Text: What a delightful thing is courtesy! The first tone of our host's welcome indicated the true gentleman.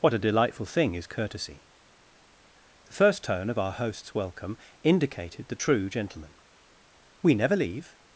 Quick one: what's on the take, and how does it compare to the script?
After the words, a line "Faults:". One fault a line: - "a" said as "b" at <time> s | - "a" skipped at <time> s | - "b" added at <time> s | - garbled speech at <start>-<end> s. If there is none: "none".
What a delightful thing is courtesy! The first tone of our host's welcome indicated the true gentleman. We never leave
Faults:
- "We never leave" added at 7.2 s